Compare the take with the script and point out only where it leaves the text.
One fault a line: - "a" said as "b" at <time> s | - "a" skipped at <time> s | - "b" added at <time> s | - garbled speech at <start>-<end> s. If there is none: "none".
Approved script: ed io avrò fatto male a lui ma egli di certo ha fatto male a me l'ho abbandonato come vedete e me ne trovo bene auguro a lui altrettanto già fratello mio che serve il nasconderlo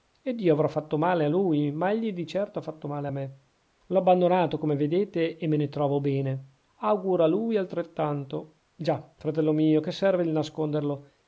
none